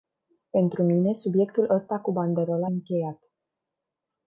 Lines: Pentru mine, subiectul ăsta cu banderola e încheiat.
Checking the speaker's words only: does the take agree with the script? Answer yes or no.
no